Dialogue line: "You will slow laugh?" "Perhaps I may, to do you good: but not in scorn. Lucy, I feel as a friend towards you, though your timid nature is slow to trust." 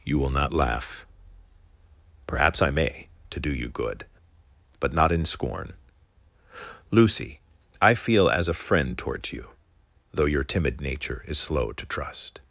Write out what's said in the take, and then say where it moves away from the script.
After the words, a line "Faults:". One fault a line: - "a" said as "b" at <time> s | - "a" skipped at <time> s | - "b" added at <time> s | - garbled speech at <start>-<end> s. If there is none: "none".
"You will not laugh?" "Perhaps I may, to do you good: but not in scorn. Lucy, I feel as a friend towards you, though your timid nature is slow to trust."
Faults:
- "slow" said as "not" at 0.3 s